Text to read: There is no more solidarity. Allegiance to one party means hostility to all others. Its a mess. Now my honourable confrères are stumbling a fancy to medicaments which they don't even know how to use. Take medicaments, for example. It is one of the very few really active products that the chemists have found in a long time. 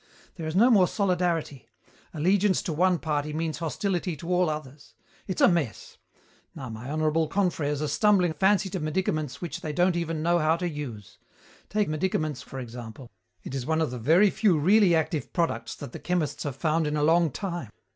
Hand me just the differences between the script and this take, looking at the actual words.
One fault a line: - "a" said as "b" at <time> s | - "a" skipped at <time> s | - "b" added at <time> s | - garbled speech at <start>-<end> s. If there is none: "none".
none